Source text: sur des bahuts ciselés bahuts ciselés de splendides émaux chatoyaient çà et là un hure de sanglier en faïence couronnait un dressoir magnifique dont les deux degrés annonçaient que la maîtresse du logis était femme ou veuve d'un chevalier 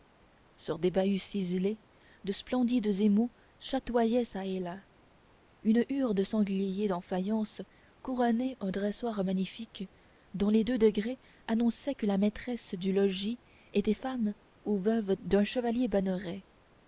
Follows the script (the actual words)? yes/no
no